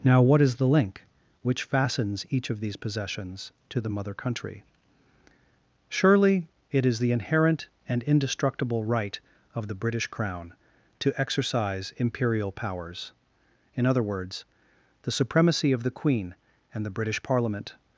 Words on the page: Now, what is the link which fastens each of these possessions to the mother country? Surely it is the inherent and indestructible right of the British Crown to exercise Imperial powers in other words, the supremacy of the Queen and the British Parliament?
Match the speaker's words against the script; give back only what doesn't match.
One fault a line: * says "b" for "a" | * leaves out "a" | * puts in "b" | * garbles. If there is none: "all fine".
all fine